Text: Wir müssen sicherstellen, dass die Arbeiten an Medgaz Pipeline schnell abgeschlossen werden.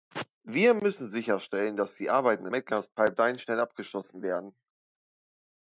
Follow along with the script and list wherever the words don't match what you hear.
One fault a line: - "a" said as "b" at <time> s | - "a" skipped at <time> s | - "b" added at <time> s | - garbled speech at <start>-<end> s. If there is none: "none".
none